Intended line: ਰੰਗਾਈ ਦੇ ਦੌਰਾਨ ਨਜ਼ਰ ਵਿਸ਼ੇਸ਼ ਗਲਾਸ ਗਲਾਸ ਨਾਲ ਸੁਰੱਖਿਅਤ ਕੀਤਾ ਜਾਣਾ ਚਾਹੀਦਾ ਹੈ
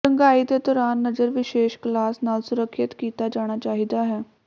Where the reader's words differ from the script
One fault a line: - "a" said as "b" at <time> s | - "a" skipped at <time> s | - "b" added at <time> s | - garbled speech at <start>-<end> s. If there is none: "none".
- "ਗਲਾਸ" skipped at 2.2 s